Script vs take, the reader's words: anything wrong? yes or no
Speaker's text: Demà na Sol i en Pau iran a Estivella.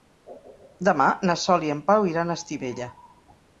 no